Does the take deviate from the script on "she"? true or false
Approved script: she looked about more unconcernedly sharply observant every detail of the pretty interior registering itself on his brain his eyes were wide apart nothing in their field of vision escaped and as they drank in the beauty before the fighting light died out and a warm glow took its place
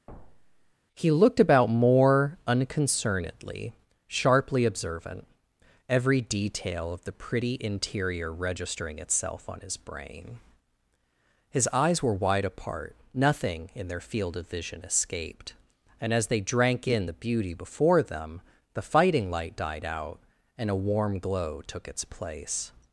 true